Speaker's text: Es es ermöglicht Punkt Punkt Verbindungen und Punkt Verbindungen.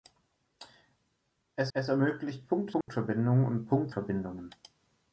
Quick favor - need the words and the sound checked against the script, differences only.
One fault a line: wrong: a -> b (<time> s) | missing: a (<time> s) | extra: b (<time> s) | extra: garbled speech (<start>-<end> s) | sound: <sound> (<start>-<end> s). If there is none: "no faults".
sound: dropout (2.8-2.9 s)